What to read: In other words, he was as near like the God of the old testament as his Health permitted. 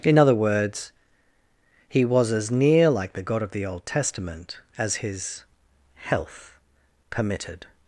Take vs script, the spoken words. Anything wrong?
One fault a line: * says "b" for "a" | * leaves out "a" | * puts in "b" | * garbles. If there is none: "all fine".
all fine